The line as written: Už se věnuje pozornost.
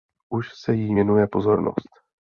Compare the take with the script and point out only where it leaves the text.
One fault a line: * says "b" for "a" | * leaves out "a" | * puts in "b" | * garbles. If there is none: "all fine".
* puts in "jí"